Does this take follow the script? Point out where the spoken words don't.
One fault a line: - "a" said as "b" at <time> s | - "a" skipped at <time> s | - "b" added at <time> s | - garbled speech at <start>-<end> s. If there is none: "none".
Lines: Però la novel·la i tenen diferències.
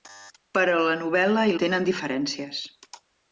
none